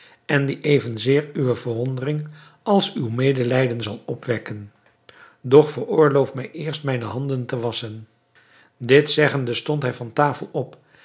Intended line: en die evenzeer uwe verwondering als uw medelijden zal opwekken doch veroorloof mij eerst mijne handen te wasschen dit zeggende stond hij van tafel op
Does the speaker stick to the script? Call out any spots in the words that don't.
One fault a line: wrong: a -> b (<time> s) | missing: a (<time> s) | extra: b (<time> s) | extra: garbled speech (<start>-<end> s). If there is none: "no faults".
no faults